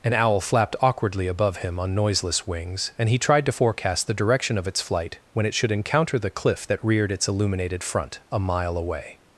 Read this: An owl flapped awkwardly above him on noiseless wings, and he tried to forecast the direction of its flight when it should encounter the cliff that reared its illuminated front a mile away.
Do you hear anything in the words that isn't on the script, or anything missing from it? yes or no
no